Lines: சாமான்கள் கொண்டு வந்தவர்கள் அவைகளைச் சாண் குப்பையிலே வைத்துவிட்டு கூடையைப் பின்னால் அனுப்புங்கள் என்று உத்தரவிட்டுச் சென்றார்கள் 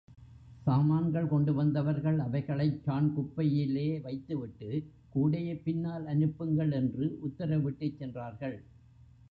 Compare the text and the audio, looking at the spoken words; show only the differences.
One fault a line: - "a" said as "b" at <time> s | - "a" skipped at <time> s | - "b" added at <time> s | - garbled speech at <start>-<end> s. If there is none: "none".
none